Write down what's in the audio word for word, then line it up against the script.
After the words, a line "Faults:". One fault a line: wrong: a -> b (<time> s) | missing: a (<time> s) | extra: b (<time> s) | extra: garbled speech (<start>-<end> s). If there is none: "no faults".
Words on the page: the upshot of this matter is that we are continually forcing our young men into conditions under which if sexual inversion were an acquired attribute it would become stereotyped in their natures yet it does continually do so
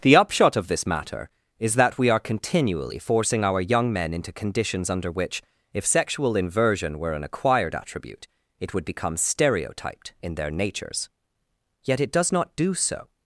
the upshot of this matter is that we are continually forcing our young men into conditions under which if sexual inversion were an acquired attribute it would become stereotyped in their natures yet it does not do so
Faults:
wrong: continually -> not (12.3 s)